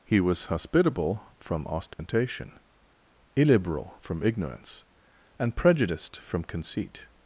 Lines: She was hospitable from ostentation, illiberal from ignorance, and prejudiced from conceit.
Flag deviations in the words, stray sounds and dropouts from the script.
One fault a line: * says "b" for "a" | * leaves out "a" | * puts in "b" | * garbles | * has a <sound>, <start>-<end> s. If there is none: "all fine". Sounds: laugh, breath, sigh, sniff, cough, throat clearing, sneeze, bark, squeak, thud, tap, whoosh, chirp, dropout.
* says "He" for "She"
* has a dropout, 1.9-2.0 s